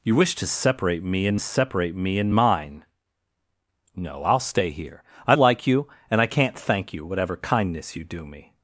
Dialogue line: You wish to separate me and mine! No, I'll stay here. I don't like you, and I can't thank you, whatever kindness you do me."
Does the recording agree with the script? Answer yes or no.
no